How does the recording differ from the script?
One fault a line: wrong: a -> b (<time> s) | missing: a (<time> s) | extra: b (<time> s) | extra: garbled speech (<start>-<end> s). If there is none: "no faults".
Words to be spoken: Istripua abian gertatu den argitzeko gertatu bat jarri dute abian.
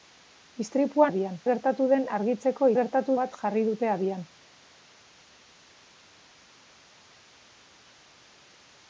no faults